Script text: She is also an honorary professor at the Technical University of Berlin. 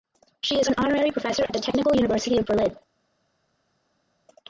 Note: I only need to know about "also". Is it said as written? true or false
false